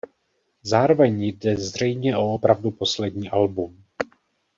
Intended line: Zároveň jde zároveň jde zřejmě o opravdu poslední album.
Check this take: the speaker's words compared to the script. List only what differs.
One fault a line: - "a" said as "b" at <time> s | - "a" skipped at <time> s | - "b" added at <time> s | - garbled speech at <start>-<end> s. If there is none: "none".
- "zároveň jde" skipped at 1.6 s